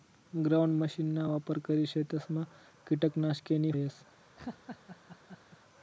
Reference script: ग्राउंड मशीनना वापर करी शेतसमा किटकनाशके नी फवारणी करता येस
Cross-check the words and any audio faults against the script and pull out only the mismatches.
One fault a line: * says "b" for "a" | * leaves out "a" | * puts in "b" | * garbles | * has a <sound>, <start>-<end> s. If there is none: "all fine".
* leaves out "फवारणी करता"
* has a laugh, 4.4-5.6 s